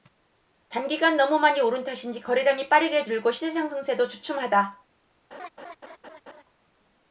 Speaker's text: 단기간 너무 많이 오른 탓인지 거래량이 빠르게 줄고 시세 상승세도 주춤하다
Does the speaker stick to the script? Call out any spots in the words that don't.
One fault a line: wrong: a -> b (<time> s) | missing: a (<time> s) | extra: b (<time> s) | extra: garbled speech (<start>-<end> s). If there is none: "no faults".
no faults